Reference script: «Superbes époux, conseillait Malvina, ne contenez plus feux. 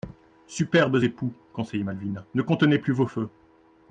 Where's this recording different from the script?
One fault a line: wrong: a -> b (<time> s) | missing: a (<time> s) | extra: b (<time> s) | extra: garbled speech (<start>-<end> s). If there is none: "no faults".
extra: vos (2.9 s)